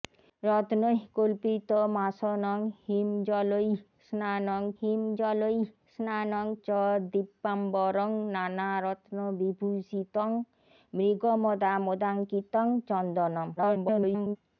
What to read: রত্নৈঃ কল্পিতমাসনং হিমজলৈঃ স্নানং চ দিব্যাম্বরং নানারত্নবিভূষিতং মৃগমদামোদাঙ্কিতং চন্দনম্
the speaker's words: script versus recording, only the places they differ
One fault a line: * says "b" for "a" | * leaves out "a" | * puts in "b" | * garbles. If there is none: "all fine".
* puts in "হিমজলৈঃ স্নানং"
* garbles